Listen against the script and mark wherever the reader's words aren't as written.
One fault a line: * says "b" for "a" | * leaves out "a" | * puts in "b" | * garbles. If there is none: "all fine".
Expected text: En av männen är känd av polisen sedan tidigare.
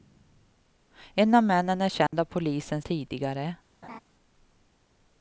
* leaves out "sedan"